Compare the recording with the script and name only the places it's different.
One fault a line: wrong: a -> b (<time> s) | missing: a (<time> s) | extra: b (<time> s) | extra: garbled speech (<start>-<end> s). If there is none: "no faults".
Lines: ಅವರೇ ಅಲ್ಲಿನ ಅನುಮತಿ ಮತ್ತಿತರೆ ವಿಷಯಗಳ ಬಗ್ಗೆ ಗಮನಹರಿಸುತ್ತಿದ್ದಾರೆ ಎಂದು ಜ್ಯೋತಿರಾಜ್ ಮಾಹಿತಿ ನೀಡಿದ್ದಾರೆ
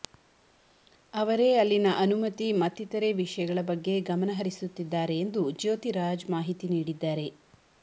no faults